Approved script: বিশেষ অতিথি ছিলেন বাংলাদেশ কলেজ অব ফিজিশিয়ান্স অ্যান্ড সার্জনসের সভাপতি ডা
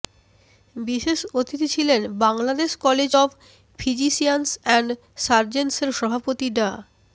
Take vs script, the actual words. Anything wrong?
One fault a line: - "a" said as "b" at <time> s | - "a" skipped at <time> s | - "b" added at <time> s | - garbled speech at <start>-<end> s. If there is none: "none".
none